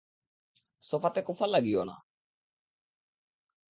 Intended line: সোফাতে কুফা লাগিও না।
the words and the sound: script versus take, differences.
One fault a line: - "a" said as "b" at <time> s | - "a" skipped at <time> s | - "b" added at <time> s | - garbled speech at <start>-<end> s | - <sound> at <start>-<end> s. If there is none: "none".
none